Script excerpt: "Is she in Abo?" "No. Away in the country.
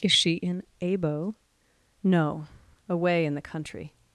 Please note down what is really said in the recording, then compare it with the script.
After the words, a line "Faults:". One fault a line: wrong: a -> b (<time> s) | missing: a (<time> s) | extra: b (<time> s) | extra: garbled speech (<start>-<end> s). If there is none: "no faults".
"Is she in Abo?" "No. Away in the country.
Faults:
no faults